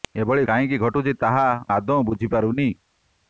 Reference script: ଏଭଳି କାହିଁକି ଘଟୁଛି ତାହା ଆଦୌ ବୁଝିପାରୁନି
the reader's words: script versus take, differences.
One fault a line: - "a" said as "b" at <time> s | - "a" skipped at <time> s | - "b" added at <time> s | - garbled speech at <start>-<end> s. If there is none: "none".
none